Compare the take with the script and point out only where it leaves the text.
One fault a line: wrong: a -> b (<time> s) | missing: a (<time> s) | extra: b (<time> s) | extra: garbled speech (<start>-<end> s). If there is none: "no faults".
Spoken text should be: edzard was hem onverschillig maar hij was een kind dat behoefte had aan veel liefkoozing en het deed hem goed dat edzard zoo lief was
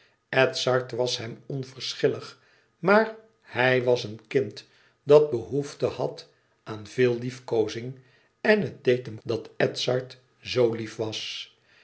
missing: goed (9.2 s)